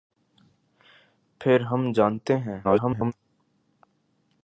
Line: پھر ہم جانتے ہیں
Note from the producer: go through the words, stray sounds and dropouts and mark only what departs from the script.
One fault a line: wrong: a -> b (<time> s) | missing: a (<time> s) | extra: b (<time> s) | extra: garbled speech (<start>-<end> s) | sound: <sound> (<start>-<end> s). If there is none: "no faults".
extra: garbled speech (2.6-3.1 s)